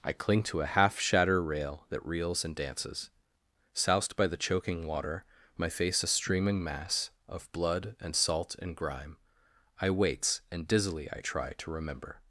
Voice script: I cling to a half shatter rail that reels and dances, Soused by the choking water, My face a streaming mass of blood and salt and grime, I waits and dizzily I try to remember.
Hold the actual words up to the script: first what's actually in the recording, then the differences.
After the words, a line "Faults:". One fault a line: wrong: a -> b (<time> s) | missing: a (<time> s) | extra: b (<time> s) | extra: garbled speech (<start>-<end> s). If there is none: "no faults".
I cling to a half shatter rail that reels and dances, Soused by the choking water, My face a streaming mass of blood and salt and grime, I waits and dizzily I try to remember.
Faults:
no faults